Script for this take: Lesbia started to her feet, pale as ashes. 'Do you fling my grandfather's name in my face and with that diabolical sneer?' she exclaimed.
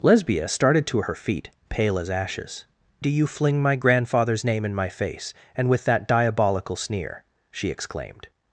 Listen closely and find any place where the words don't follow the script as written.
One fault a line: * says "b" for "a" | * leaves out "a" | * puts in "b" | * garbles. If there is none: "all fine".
all fine